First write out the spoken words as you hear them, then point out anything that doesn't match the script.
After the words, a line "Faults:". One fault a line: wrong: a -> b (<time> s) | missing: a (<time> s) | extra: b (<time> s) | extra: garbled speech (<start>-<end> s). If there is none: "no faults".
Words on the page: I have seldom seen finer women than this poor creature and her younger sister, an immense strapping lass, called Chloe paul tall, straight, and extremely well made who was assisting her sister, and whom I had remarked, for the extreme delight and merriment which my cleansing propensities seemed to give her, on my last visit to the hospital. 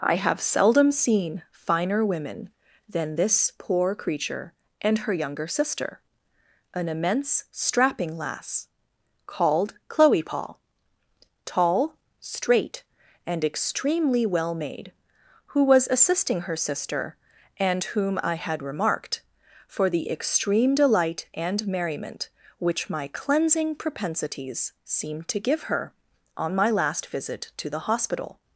I have seldom seen finer women than this poor creature and her younger sister, an immense strapping lass, called Chloe paul tall, straight, and extremely well made who was assisting her sister, and whom I had remarked, for the extreme delight and merriment which my cleansing propensities seemed to give her, on my last visit to the hospital.
Faults:
no faults